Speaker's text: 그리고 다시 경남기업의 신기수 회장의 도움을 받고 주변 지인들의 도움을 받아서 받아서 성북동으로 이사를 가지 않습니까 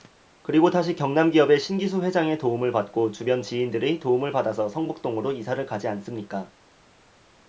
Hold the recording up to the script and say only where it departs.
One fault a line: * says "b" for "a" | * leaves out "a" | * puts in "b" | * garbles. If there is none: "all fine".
* leaves out "받아서"